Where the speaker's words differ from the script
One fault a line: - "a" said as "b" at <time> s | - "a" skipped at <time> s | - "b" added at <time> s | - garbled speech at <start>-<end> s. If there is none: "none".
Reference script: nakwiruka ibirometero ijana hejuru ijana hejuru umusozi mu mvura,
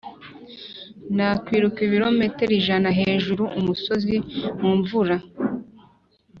- "ijana hejuru" skipped at 3.4 s